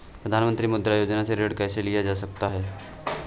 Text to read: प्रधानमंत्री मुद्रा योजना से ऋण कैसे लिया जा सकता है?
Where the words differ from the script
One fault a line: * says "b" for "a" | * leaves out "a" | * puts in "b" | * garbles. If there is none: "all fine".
all fine